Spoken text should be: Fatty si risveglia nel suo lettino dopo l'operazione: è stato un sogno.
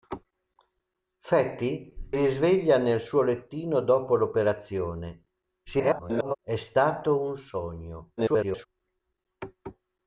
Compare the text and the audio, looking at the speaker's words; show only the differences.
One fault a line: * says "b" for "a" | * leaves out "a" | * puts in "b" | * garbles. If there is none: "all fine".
* leaves out "si"
* garbles
* garbles